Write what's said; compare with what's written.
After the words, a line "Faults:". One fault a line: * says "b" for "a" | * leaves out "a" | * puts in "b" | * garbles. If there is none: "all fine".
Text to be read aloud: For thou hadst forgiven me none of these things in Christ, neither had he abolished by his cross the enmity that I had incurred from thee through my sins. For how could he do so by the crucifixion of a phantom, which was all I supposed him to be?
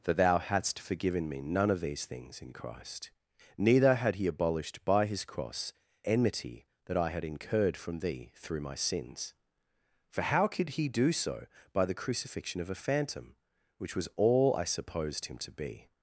For thou hadst forgiven me none of these things in Christ, neither had he abolished by his cross enmity that I had incurred from thee through my sins. For how could he do so by the crucifixion of a phantom, which was all I supposed him to be?
Faults:
* leaves out "the"